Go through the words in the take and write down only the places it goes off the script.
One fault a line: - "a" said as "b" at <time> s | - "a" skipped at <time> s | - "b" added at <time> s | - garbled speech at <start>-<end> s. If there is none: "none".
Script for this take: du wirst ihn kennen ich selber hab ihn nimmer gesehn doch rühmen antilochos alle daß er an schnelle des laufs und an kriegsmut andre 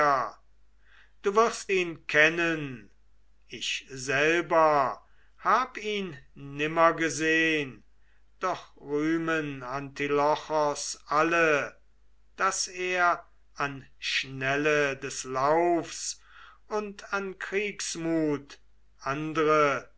none